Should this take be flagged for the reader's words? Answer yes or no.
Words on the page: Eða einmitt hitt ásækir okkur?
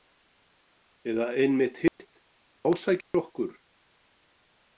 no